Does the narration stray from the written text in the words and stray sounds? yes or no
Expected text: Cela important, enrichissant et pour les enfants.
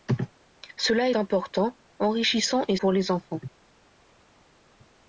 no